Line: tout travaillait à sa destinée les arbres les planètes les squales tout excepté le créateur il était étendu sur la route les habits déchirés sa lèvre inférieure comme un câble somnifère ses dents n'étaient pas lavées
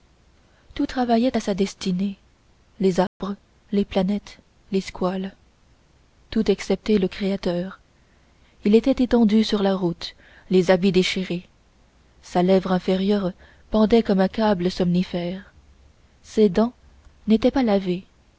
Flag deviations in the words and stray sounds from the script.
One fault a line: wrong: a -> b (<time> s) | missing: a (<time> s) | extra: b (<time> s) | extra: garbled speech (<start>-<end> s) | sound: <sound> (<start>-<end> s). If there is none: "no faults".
sound: dropout (3.1-3.2 s)
extra: pendait (13.7 s)